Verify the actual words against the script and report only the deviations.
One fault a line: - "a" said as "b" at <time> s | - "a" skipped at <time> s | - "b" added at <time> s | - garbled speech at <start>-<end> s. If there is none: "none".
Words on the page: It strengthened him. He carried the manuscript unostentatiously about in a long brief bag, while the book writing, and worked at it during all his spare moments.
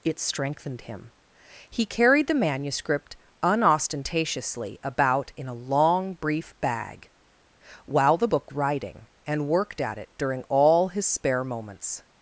none